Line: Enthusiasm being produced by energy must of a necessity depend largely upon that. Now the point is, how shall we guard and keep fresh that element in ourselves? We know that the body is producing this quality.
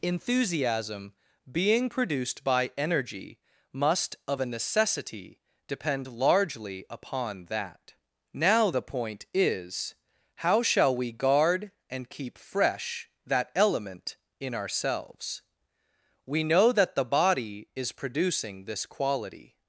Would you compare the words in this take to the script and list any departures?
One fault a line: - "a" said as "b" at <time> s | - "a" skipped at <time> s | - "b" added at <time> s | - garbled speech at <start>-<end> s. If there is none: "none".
none